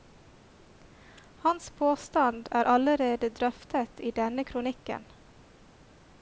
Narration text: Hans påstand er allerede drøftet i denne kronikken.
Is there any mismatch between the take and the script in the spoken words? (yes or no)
no